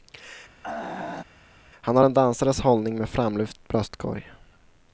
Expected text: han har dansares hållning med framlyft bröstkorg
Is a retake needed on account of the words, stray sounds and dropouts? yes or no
yes